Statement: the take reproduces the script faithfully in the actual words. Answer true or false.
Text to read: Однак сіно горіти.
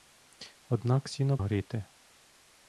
true